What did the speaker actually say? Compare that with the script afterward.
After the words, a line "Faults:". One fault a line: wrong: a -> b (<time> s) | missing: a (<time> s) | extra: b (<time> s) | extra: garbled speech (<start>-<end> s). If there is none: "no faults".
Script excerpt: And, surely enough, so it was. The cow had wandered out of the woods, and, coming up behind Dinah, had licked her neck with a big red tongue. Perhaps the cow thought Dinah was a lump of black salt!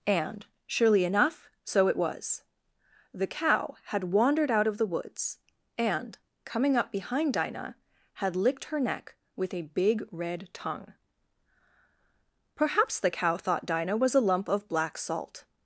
And, surely enough, so it was. The cow had wandered out of the woods, and, coming up behind Dinah, had licked her neck with a big red tongue. Perhaps the cow thought Dinah was a lump of black salt!
Faults:
no faults